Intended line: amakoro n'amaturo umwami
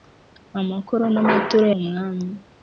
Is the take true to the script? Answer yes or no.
yes